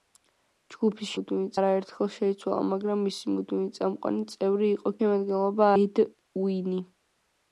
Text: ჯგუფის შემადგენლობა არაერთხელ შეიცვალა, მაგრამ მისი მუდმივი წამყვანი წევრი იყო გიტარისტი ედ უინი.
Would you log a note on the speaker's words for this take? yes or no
yes